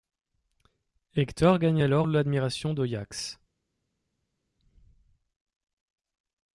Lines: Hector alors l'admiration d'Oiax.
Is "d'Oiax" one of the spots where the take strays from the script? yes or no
no